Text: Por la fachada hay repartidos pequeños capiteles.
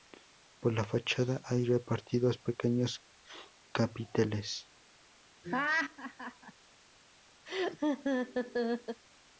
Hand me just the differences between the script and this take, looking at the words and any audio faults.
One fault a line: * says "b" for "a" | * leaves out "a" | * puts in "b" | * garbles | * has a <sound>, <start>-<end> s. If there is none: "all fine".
* has a laugh, 5.4-6.5 s
* has a laugh, 7.5-9.0 s